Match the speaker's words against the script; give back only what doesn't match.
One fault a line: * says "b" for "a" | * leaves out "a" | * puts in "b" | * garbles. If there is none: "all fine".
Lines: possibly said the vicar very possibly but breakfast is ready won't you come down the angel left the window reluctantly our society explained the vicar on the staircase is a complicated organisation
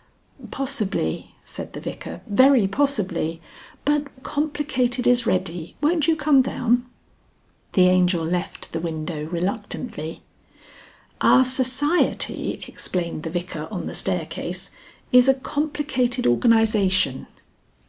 * says "complicated" for "breakfast"